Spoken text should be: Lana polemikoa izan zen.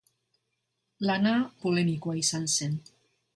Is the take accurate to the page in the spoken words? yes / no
yes